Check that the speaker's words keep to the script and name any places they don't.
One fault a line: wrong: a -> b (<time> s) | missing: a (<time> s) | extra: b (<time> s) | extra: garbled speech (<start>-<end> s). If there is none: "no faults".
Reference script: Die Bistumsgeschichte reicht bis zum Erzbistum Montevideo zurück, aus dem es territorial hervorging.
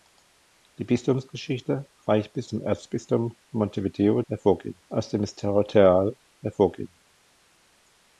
wrong: zurück -> hervorging (4.3 s)